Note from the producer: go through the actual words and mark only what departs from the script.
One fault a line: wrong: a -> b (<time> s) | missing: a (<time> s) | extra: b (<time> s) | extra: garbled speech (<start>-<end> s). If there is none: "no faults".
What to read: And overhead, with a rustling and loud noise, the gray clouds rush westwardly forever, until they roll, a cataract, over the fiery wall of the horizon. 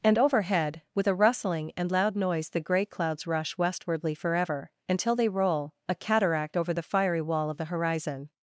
no faults